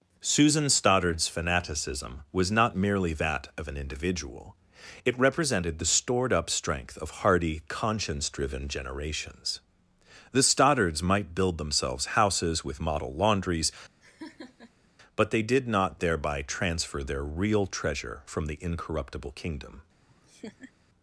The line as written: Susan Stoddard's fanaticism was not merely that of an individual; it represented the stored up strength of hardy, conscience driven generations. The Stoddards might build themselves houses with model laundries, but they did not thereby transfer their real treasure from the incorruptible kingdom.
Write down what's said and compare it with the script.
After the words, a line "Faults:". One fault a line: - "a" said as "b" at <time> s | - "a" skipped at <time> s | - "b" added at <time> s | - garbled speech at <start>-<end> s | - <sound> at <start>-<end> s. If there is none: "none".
Susan Stoddard's fanaticism was not merely that of an individual; it represented the stored up strength of hardy, conscience driven generations. The Stoddards might build themselves houses with model laundries, but they did not thereby transfer their real treasure from the incorruptible kingdom.
Faults:
- laugh at 14.0-14.9 s
- laugh at 20.0-20.7 s